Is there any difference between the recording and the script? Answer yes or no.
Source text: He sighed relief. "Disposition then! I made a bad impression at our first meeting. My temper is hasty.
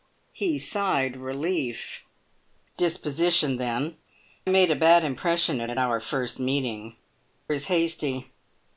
yes